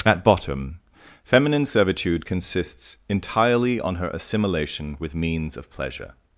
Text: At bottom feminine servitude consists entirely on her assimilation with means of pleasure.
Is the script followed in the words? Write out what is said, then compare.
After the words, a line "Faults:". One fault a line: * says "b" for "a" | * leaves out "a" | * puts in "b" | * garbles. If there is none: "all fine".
At bottom feminine servitude consists entirely on her assimilation with means of pleasure.
Faults:
all fine